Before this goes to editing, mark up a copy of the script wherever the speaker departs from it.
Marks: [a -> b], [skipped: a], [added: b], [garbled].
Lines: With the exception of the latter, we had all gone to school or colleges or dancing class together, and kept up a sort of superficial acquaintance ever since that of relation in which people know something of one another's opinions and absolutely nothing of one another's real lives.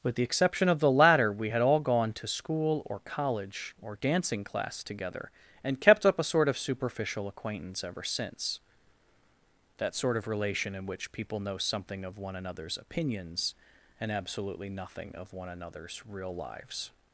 With the exception of the latter, we had all gone to school or [colleges -> college] or dancing class together, and kept up a sort of superficial acquaintance ever since that [added: sort] of relation in which people know something of one another's opinions and absolutely nothing of one another's real lives.